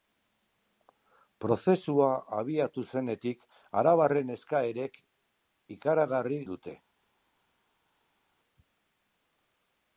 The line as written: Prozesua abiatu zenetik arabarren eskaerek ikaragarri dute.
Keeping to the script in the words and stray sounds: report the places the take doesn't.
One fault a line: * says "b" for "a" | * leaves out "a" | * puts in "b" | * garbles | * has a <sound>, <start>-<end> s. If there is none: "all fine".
all fine